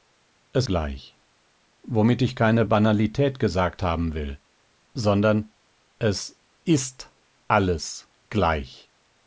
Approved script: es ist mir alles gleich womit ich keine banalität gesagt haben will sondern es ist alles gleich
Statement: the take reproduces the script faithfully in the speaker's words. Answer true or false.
false